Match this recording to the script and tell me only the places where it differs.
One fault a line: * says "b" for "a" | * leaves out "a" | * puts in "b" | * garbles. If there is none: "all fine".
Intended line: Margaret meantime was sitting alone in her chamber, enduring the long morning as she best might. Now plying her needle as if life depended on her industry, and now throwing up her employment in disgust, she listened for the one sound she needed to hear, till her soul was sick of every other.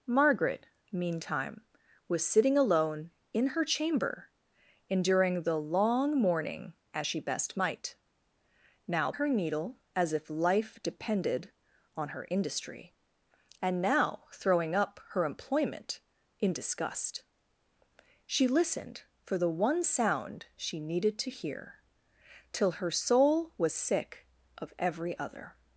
* leaves out "plying"